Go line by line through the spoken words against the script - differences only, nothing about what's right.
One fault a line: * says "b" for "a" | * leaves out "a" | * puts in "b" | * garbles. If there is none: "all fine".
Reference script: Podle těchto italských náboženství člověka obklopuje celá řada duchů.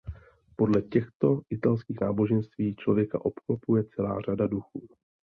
all fine